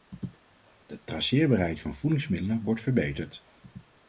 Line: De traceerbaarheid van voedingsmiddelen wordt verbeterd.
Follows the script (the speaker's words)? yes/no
yes